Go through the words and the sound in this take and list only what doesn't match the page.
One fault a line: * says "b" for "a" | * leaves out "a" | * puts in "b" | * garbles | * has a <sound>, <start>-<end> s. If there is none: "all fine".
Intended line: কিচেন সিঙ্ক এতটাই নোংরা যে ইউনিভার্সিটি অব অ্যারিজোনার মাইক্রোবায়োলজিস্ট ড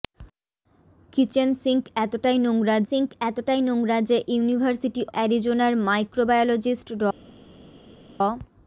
* puts in "সিঙ্ক এতটাই নোংরা"
* leaves out "অব"